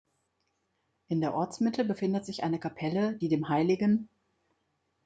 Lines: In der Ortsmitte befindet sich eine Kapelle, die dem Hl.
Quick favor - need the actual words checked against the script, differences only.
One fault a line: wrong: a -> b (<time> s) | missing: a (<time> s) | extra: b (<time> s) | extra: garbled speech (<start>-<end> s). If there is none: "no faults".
no faults